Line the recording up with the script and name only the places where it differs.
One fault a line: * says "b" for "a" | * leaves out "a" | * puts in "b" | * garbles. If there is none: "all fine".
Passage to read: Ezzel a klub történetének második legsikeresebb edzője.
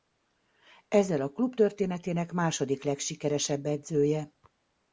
all fine